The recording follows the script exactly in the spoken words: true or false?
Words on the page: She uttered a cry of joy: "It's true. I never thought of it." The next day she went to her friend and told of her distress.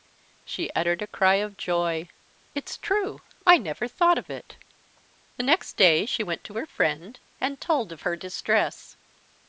true